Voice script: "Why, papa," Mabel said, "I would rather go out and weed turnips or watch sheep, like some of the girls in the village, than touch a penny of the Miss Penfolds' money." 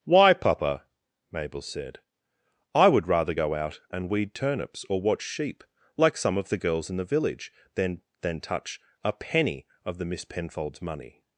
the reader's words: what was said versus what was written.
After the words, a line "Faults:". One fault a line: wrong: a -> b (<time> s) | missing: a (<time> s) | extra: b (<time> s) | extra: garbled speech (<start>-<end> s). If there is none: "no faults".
"Why, papa," Mabel said, "I would rather go out and weed turnips or watch sheep, like some of the girls in the village, than than touch a penny of the Miss Penfolds' money."
Faults:
extra: than (8.2 s)